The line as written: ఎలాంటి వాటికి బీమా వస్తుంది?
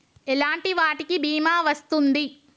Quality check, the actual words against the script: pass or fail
pass